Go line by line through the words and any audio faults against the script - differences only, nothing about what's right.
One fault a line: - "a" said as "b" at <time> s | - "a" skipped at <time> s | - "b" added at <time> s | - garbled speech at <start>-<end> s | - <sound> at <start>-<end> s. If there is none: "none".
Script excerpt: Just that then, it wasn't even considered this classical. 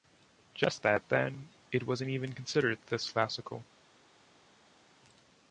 none